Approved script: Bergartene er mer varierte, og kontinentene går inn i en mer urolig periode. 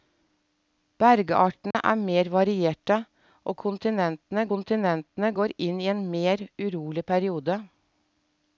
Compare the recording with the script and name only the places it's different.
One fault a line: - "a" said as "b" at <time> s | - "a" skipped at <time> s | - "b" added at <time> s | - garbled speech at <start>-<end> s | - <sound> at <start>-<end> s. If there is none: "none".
- dropout at 1.7-1.7 s
- "kontinentene" added at 4.5 s